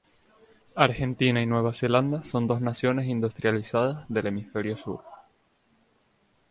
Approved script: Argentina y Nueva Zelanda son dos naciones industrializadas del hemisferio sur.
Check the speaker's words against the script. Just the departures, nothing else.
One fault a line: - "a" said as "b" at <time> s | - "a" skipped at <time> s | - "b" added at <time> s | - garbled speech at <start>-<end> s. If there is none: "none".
none